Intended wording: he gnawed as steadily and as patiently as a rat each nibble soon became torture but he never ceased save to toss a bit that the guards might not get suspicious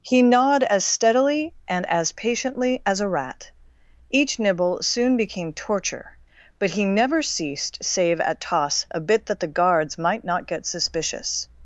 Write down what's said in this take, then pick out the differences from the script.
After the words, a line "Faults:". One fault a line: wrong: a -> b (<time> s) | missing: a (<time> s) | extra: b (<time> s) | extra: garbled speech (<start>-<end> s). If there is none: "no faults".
he gnawed as steadily and as patiently as a rat each nibble soon became torture but he never ceased save at toss a bit that the guards might not get suspicious
Faults:
wrong: to -> at (8.2 s)